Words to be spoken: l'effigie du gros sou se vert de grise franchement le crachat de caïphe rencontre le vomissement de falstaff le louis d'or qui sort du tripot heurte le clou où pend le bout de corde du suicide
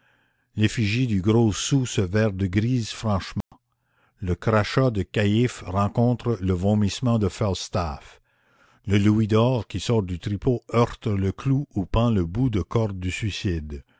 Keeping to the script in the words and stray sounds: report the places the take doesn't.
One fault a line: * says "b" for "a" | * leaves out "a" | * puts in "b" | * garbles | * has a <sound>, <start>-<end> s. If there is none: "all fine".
* has a dropout, 3.4-3.5 s